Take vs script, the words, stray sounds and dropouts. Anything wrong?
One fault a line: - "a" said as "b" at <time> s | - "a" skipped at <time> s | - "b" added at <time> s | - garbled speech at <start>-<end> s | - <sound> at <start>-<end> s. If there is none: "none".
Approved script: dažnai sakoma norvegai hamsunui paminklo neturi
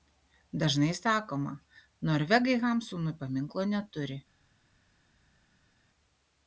none